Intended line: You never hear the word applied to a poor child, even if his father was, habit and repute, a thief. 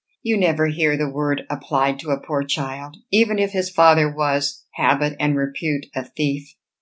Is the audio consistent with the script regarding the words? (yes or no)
yes